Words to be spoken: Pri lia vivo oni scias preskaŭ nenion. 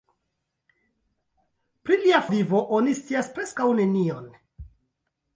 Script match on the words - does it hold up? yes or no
yes